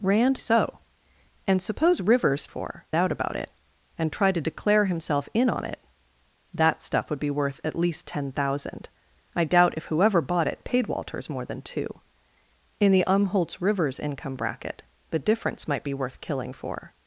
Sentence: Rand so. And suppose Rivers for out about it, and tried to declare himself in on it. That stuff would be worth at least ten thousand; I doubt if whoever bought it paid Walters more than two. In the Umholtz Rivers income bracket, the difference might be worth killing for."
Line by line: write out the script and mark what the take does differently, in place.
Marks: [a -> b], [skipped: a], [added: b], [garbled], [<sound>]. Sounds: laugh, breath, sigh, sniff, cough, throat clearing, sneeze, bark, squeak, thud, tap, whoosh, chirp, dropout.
Rand so. And suppose Rivers for out about it, and tried to declare himself in on it. That stuff would be worth at least ten thousand; I doubt if whoever bought it paid Walters more than two. In the Umholtz Rivers income bracket, the difference might be worth killing for."